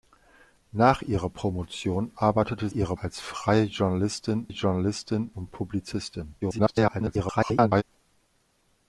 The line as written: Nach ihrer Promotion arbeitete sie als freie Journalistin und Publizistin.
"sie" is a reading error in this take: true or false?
true